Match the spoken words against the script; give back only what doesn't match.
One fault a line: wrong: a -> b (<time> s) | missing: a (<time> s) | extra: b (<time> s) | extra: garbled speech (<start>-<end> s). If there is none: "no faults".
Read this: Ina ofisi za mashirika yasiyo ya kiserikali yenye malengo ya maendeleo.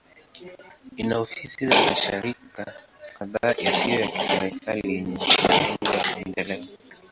extra: kadhaa (3.2 s)